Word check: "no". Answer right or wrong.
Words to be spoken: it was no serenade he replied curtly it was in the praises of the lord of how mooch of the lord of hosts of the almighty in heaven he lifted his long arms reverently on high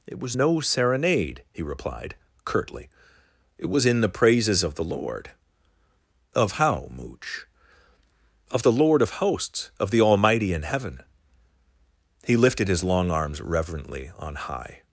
right